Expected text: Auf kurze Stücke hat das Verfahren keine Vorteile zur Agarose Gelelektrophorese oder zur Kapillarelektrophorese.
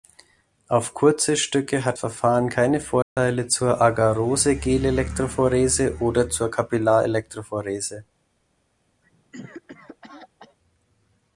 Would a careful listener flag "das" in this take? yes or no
yes